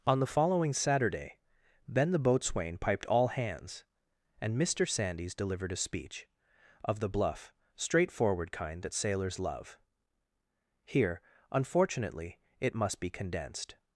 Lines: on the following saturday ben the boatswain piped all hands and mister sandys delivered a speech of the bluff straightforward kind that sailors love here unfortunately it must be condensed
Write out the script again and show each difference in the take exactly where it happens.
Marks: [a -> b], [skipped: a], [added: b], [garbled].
on the following saturday ben the boatswain piped all hands and mister sandys delivered a speech of the bluff straightforward kind that sailors love here unfortunately it must be condensed